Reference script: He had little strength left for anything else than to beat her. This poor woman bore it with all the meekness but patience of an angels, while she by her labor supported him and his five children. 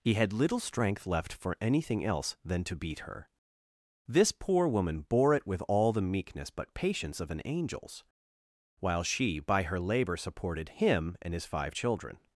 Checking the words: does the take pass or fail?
pass